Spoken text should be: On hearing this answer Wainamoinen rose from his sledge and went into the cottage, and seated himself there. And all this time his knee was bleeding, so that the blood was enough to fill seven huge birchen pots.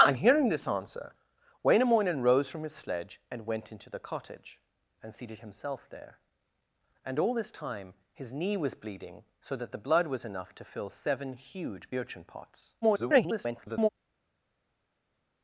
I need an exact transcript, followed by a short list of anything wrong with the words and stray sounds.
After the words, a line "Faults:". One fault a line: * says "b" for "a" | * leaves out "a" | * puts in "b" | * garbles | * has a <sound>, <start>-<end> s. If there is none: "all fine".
On hearing this answer Wainamoinen rose from his sledge and went into the cottage, and seated himself there. And all this time his knee was bleeding, so that the blood was enough to fill seven huge birchen pots. [garbled]
Faults:
* garbles